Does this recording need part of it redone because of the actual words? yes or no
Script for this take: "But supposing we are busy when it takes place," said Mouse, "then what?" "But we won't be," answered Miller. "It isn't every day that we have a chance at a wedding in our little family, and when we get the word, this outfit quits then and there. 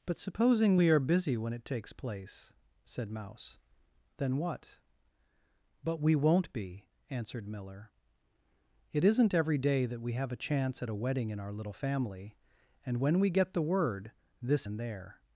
yes